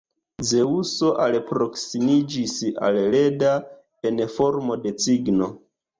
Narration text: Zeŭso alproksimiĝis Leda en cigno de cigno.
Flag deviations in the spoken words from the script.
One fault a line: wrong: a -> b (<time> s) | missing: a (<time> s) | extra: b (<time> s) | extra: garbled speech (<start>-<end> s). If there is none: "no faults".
extra: al (2.9 s)
wrong: cigno -> formo (4.4 s)